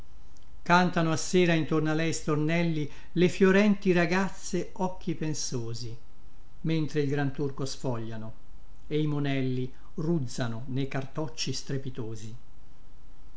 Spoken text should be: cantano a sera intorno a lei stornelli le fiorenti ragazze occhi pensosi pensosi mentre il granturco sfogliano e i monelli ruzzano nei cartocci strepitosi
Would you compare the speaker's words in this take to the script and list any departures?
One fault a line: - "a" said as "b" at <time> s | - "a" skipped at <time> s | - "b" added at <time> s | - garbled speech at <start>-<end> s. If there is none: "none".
- "pensosi" skipped at 6.0 s